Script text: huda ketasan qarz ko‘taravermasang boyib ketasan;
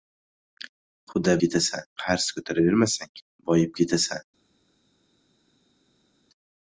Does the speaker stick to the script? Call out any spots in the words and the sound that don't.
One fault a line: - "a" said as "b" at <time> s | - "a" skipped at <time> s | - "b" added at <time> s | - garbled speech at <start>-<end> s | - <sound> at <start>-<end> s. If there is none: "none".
none